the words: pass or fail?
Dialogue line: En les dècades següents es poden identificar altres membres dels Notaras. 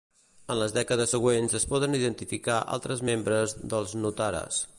pass